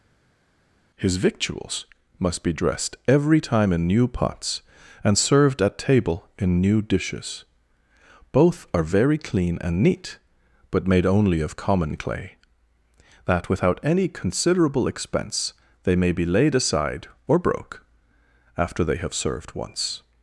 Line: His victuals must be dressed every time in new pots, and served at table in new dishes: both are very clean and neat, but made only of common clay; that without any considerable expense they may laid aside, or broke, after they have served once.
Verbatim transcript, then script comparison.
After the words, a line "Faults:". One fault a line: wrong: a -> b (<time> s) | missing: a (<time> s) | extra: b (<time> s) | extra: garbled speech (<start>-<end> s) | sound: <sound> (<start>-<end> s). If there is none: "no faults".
His victuals must be dressed every time in new pots, and served at table in new dishes: both are very clean and neat, but made only of common clay; that without any considerable expense they may be laid aside, or broke, after they have served once.
Faults:
extra: be (16.1 s)